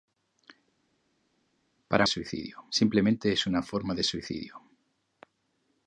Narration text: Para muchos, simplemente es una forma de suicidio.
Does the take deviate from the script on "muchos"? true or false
true